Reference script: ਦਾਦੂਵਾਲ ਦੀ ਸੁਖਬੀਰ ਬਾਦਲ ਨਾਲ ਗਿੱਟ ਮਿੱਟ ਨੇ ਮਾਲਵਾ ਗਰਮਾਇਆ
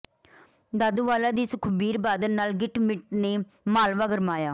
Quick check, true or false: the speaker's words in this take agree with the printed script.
true